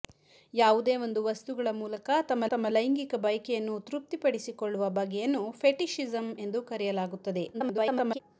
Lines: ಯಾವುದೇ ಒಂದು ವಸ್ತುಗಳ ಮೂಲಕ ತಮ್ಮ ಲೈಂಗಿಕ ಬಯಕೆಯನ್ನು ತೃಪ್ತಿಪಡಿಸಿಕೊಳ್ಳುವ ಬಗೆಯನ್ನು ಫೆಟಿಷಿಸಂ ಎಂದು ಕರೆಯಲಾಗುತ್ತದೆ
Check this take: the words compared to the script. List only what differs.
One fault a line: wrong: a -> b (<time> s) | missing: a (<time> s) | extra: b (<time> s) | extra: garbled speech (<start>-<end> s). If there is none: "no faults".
extra: ತಮ್ಮ (2.5 s)
extra: garbled speech (7.5-8.2 s)